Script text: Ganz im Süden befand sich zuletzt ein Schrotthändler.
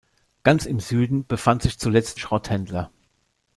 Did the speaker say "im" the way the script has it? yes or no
yes